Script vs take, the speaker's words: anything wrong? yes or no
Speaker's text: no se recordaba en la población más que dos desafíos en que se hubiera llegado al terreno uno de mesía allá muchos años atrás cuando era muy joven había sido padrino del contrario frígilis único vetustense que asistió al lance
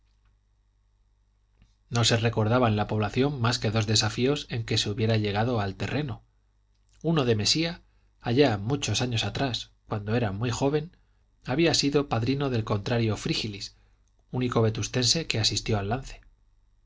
no